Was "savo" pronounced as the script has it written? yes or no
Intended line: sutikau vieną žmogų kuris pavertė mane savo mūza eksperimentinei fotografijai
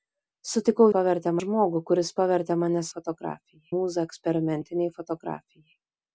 no